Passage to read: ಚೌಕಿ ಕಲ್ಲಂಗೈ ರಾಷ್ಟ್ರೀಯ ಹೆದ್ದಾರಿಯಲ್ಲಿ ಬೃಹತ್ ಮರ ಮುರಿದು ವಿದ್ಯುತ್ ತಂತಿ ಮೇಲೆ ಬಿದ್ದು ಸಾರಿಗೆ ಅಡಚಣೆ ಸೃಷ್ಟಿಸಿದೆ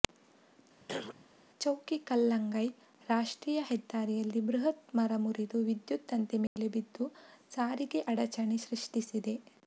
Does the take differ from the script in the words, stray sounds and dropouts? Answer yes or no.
yes